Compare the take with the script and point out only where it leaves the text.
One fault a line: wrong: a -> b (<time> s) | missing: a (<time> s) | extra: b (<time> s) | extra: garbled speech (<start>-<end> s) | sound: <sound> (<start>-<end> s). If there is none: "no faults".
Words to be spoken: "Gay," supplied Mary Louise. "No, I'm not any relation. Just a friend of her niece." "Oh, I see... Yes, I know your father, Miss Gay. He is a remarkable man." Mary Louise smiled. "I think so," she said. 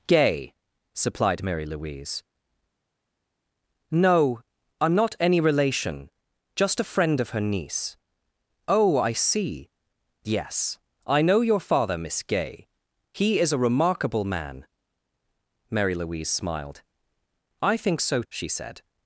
no faults